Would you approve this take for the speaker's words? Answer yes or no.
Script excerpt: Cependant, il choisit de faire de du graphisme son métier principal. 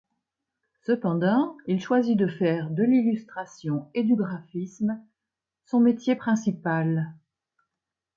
no